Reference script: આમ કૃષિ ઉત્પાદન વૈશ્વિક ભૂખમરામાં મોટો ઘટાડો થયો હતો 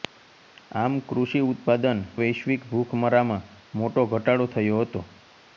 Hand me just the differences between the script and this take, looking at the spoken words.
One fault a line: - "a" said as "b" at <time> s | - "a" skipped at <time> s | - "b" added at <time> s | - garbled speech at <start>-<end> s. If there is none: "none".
none